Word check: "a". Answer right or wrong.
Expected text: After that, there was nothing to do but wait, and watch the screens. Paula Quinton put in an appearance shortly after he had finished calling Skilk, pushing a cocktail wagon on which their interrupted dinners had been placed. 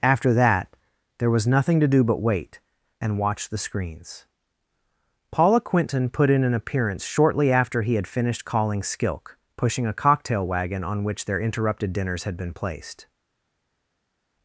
right